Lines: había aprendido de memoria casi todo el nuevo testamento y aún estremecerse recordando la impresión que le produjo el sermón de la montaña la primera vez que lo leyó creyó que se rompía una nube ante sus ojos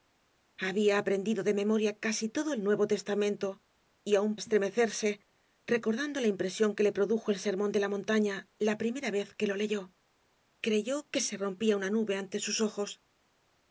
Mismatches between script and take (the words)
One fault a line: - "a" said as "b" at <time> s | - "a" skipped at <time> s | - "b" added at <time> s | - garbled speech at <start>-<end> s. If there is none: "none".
none